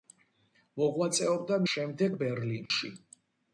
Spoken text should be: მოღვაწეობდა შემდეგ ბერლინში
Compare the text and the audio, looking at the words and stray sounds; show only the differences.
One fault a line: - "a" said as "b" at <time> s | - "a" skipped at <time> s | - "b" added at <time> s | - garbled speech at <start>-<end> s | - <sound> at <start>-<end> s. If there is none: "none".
- dropout at 2.7-2.7 s